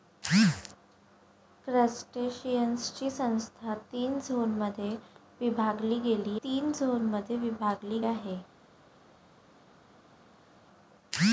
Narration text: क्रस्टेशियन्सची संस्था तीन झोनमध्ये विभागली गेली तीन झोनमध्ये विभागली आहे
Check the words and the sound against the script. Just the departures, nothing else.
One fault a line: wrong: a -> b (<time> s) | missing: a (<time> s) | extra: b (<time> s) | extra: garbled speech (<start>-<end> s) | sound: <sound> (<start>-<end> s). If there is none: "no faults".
no faults